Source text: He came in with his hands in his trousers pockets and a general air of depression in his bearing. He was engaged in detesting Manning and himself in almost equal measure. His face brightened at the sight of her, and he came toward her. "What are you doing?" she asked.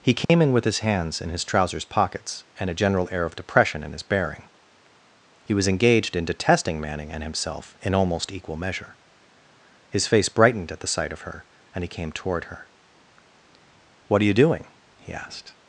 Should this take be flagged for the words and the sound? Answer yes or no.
yes